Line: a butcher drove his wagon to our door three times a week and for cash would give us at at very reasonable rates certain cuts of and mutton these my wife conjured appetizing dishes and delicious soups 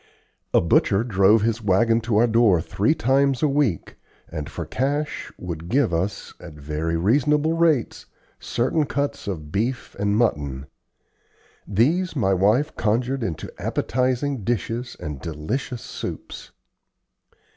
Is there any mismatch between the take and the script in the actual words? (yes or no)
yes